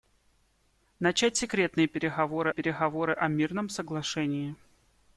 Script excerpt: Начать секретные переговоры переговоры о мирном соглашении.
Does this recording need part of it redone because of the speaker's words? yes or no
no